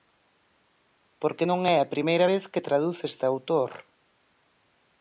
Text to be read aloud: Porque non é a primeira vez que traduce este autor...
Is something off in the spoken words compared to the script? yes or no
no